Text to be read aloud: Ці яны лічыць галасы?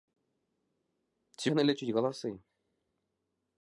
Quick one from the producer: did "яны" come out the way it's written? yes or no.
yes